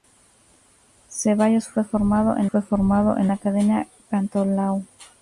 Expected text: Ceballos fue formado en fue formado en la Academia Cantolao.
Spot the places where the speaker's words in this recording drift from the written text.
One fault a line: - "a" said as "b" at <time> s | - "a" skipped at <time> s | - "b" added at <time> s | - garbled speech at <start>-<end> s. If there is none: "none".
none